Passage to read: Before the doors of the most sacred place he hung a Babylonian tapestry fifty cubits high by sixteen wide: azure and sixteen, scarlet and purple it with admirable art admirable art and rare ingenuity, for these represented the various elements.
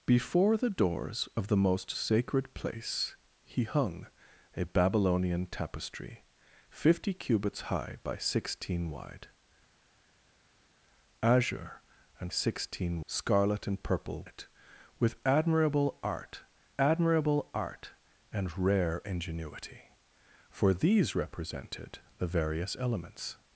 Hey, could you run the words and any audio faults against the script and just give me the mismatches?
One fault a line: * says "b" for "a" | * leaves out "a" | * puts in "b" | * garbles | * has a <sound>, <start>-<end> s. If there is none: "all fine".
all fine